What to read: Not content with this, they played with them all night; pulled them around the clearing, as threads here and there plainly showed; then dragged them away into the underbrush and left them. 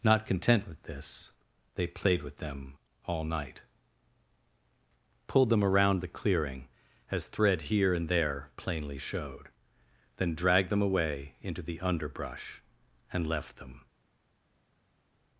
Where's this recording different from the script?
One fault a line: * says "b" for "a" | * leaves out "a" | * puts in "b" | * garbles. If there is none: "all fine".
* says "thread" for "threads"